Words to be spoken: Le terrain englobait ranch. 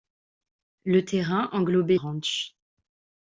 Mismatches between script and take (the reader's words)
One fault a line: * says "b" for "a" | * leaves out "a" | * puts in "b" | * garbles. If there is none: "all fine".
all fine